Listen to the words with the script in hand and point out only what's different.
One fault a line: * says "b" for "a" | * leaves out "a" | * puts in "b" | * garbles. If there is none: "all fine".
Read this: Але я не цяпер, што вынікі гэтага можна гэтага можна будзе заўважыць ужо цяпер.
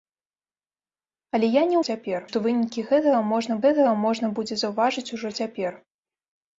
all fine